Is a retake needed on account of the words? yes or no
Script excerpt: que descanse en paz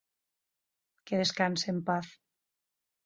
no